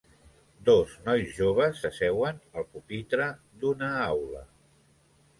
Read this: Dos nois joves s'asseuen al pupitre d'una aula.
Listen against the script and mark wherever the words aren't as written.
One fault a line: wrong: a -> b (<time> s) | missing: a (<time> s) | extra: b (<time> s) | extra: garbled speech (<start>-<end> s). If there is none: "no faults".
no faults